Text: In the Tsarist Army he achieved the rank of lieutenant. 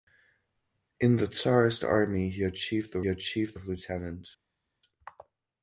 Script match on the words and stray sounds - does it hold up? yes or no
no